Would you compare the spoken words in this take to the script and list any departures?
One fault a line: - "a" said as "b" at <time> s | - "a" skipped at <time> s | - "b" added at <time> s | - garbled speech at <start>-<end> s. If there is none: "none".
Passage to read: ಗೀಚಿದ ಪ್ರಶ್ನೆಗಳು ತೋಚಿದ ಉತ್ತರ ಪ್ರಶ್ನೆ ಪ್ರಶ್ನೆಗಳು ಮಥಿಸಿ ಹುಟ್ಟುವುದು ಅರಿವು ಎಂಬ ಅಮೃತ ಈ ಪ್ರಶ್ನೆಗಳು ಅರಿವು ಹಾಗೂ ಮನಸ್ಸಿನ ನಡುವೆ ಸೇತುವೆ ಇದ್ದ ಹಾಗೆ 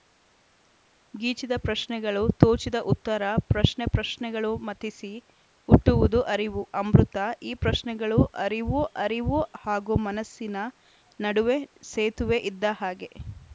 - "ಎಂಬ" skipped at 6.6 s
- "ಅರಿವು" added at 9.0 s